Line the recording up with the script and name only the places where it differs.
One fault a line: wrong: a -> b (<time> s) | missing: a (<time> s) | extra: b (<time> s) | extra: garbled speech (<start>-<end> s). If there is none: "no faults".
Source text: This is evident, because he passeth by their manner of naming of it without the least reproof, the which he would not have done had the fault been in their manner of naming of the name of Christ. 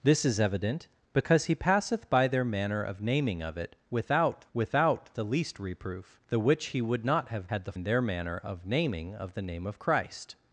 extra: without (4.5 s)
missing: done (7.5 s)
missing: fault been (7.7 s)